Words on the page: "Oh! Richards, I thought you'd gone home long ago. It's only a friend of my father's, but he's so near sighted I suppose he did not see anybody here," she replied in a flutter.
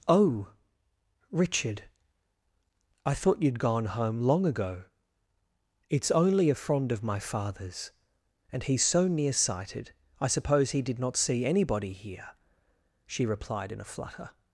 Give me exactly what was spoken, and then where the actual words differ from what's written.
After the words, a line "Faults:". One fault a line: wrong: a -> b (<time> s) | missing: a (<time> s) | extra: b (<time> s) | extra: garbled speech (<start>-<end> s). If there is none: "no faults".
"Oh! Richard, I thought you'd gone home long ago. It's only a friend of my father's, and he's so near sighted I suppose he did not see anybody here," she replied in a flutter.
Faults:
wrong: Richards -> Richard (1.3 s)
wrong: but -> and (8.5 s)